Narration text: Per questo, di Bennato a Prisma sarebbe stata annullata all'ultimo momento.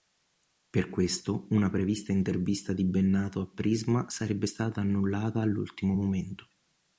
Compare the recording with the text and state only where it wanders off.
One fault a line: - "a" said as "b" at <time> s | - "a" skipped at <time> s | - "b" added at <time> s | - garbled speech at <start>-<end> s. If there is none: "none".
- "una prevista intervista" added at 1.5 s